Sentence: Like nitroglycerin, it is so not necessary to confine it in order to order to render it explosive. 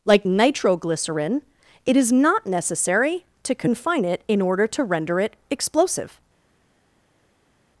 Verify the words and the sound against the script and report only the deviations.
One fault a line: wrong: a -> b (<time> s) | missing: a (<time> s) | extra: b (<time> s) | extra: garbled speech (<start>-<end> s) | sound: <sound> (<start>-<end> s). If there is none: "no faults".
missing: so (2.1 s)
missing: order to (4.8 s)